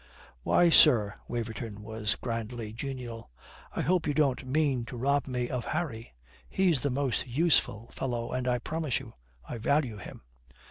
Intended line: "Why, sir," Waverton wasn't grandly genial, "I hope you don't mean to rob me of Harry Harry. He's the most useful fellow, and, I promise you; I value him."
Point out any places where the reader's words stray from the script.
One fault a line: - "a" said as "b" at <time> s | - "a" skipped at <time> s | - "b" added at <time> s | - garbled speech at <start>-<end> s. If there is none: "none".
- "wasn't" said as "was" at 1.8 s
- "Harry" skipped at 6.2 s